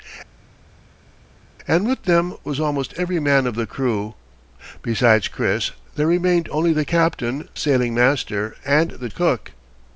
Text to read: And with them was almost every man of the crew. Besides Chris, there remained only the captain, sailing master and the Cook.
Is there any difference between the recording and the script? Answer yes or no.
no